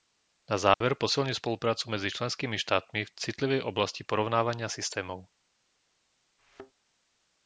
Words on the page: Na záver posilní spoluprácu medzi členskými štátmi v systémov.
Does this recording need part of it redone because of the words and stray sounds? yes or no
yes